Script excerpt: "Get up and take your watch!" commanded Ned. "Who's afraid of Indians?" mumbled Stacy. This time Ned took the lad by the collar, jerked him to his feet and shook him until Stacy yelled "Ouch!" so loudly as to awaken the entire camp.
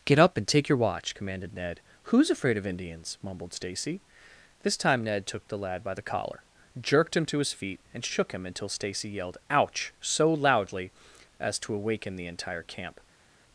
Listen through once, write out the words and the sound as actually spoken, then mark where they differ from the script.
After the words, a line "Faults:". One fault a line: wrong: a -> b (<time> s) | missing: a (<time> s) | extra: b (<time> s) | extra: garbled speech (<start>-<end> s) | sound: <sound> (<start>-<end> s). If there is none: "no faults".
"Get up and take your watch!" commanded Ned. "Who's afraid of Indians?" mumbled Stacy. This time Ned took the lad by the collar, jerked him to his feet and shook him until Stacy yelled "Ouch!" so loudly as to awaken the entire camp.
Faults:
no faults